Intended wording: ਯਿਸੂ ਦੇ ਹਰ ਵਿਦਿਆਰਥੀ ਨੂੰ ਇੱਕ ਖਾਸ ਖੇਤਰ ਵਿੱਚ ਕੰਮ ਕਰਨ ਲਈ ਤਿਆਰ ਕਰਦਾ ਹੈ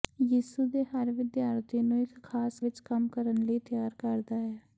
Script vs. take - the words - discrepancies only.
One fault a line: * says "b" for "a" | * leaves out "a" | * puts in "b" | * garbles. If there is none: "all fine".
* leaves out "ਖੇਤਰ"